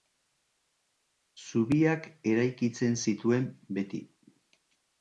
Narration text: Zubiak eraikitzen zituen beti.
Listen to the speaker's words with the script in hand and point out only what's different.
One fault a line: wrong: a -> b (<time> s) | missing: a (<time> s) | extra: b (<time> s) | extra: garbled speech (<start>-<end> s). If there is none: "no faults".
no faults